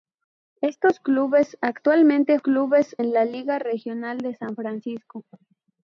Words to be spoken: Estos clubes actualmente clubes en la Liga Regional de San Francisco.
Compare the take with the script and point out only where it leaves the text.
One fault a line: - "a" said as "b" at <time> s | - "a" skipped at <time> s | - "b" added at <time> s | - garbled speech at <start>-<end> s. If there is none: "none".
none